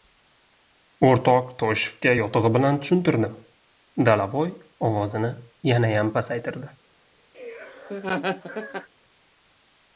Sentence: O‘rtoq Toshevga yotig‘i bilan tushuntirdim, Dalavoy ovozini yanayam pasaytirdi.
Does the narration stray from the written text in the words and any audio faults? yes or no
yes